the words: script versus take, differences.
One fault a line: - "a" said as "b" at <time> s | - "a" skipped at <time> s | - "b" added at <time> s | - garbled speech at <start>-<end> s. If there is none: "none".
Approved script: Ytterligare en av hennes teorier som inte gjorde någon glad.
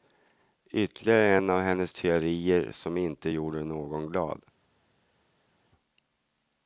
none